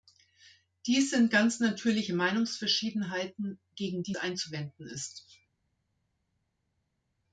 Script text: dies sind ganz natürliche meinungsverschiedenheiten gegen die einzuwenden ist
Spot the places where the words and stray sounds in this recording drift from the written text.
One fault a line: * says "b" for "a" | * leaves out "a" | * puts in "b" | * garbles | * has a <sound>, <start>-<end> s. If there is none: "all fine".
all fine